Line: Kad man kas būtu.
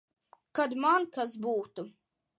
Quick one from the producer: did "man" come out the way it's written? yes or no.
yes